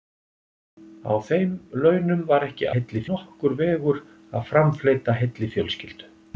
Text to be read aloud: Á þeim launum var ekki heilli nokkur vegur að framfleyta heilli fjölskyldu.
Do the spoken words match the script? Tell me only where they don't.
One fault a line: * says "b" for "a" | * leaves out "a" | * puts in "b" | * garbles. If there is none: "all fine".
all fine